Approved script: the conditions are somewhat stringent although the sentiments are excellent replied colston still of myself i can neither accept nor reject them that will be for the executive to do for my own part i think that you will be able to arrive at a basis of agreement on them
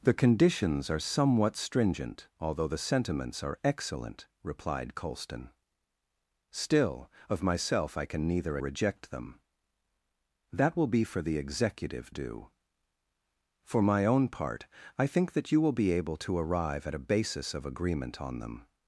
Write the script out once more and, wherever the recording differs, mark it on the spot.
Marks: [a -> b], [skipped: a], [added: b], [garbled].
the conditions are somewhat stringent although the sentiments are excellent replied colston still of myself i can neither [skipped: accept nor] reject them that will be for the executive [skipped: to] do for my own part i think that you will be able to arrive at a basis of agreement on them